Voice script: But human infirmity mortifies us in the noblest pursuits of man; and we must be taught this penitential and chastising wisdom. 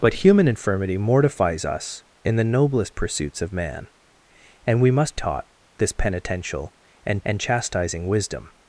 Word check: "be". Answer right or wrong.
wrong